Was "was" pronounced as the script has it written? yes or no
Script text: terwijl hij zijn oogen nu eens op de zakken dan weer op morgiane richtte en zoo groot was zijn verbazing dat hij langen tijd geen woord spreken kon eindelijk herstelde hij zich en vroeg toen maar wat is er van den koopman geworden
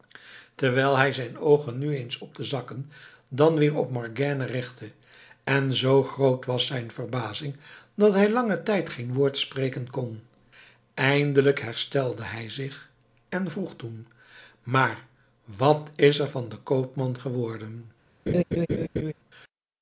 yes